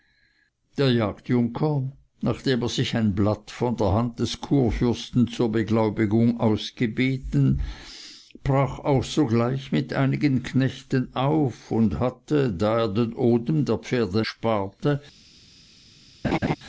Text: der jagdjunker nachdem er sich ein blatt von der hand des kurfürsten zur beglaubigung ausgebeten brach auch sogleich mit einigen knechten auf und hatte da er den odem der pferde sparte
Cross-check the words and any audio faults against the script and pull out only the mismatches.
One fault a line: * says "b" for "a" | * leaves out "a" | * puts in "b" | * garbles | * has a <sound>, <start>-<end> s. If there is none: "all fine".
* has a laugh, 16.2-16.6 s